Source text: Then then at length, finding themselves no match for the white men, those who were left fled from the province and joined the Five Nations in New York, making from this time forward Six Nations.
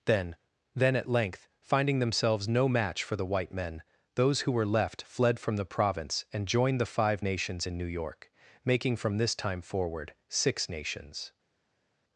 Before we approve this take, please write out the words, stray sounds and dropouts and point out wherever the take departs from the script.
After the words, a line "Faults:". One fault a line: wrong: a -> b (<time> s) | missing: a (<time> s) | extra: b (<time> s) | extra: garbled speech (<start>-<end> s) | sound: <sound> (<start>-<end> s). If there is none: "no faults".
Then then at length, finding themselves no match for the white men, those who were left fled from the province and joined the Five Nations in New York, making from this time forward Six Nations.
Faults:
no faults